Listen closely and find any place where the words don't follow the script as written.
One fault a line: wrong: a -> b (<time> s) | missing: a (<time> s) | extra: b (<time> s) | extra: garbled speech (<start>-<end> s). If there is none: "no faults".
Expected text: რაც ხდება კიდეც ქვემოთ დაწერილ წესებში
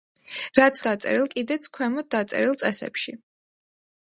wrong: ხდება -> დაწერილ (0.9 s)